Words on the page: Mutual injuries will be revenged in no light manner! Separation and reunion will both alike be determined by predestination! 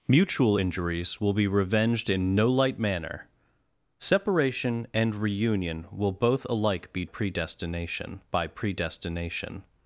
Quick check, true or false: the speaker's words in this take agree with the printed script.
false